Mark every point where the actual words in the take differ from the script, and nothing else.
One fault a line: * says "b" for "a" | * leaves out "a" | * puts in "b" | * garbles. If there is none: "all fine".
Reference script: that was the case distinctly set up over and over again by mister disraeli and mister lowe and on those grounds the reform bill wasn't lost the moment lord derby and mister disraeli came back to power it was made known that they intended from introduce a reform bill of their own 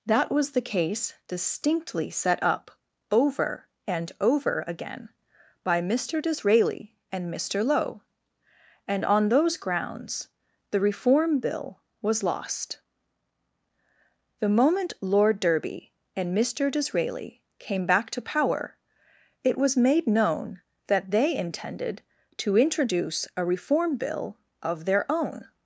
* says "was" for "wasn't"
* says "to" for "from"